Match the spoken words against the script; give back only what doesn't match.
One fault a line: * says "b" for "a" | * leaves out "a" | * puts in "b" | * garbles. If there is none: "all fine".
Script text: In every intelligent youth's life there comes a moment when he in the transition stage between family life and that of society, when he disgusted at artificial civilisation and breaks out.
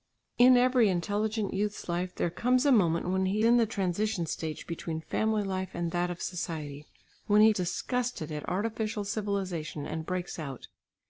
all fine